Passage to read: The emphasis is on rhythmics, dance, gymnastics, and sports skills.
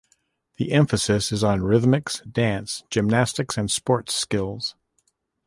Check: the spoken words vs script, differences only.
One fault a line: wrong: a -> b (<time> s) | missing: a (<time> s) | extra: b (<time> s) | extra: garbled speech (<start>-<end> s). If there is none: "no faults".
no faults